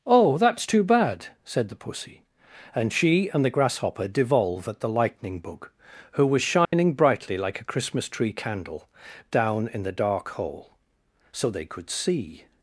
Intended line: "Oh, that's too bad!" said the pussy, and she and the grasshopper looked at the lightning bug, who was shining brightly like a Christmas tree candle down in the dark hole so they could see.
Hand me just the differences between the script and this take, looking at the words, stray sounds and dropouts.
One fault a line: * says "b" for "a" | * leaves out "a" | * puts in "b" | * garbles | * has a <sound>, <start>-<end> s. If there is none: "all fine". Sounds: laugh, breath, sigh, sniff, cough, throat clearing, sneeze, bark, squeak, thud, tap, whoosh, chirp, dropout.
* says "devolve" for "looked"
* has a dropout, 6.6-6.7 s